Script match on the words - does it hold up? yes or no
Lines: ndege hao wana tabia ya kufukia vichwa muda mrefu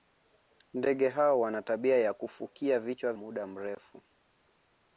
yes